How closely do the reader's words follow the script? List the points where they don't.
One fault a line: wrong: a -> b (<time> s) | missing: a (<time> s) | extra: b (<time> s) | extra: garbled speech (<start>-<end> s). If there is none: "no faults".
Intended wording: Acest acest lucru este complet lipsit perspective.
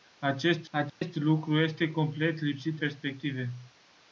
no faults